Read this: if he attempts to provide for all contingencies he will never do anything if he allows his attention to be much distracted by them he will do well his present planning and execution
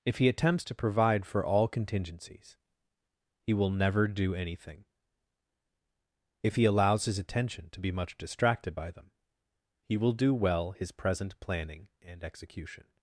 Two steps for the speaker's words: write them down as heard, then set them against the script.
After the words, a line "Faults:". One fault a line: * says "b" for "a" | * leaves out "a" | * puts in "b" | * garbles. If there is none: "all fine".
if he attempts to provide for all contingencies he will never do anything if he allows his attention to be much distracted by them he will do well his present planning and execution
Faults:
all fine